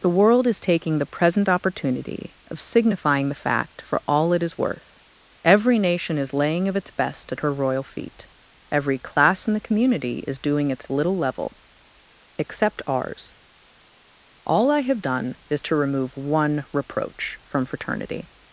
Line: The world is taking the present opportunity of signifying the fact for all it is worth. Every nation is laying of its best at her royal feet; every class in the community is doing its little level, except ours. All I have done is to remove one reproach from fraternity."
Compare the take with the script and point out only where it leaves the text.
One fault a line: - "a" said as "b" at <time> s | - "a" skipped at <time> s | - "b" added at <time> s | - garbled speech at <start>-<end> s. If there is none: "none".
none